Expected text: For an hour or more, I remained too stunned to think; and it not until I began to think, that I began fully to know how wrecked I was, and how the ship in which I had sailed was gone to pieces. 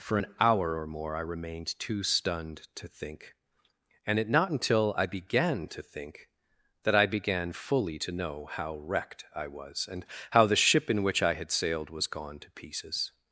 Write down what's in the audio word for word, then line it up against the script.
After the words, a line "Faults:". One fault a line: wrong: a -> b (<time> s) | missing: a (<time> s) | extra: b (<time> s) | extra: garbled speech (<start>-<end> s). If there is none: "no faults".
For an hour or more, I remained too stunned to think; and it not until I began to think, that I began fully to know how wrecked I was, and how the ship in which I had sailed was gone to pieces.
Faults:
no faults